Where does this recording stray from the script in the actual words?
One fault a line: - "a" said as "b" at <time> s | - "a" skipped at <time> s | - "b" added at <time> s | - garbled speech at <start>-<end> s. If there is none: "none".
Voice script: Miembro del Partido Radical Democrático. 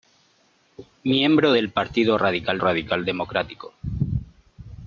- "Radical" added at 2.6 s